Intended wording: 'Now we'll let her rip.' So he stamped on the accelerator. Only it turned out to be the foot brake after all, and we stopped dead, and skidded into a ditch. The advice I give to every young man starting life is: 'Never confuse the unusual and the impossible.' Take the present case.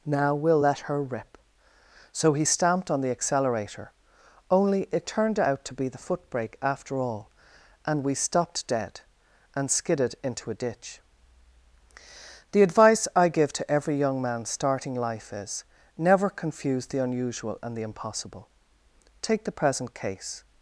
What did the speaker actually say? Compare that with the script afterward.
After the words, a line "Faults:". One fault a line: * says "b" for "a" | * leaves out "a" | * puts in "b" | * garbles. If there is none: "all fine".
'Now we'll let her rip.' So he stamped on the accelerator. Only it turned out to be the foot brake after all, and we stopped dead, and skidded into a ditch. The advice I give to every young man starting life is: 'Never confuse the unusual and the impossible.' Take the present case.
Faults:
all fine